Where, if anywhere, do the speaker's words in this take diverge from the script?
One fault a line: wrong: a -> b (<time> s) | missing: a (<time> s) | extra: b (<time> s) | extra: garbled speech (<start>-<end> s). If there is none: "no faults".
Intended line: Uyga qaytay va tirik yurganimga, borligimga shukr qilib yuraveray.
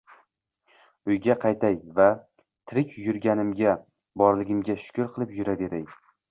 no faults